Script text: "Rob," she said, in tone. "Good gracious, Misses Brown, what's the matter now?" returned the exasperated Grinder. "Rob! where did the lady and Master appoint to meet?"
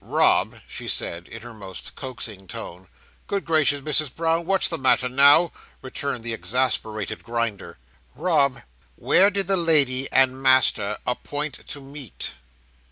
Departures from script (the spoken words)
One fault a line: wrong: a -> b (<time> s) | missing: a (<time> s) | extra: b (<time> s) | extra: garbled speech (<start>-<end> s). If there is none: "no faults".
extra: her most coaxing (1.4 s)